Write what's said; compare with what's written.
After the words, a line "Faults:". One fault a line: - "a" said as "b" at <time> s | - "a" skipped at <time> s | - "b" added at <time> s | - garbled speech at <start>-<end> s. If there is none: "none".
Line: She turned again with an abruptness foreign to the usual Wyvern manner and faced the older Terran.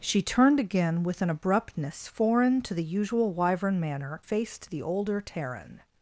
She turned again with an abruptness foreign to the usual Wyvern manner faced the older Terran.
Faults:
- "and" skipped at 4.2 s